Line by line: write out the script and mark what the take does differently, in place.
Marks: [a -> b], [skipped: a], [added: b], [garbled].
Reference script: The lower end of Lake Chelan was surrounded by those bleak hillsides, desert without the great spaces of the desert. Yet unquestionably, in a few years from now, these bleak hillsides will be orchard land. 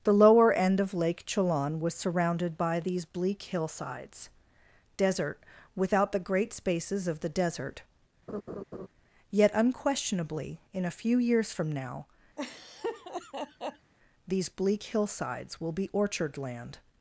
The lower end of Lake Chelan was surrounded by [those -> these] bleak hillsides, desert without the great spaces of the desert. Yet unquestionably, in a few years from now, these bleak hillsides will be orchard land.